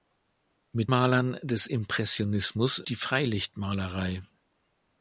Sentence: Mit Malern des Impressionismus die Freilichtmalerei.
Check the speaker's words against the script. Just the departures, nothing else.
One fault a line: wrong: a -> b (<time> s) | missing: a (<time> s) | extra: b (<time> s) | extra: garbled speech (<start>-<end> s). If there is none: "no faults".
no faults